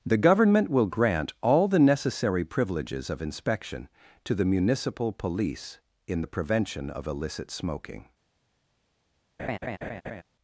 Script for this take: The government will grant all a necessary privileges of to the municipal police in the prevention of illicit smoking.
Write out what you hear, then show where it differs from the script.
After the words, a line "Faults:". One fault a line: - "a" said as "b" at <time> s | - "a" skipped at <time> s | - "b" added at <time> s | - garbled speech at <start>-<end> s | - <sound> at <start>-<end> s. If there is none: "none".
The government will grant all the necessary privileges of inspection to the municipal police in the prevention of illicit smoking.
Faults:
- "a" said as "the" at 1.7 s
- "inspection" added at 3.2 s
- laugh at 9.4-10.2 s